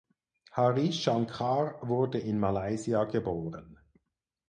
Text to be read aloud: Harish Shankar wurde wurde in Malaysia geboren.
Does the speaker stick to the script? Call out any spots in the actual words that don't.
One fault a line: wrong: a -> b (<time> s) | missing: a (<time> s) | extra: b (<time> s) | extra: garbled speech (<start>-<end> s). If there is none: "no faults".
missing: wurde (2.2 s)